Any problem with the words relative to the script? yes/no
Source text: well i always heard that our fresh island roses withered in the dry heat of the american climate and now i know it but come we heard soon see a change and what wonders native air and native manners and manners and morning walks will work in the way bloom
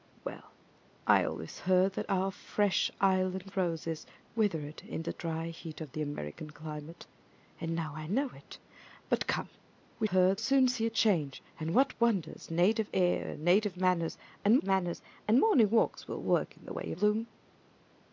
no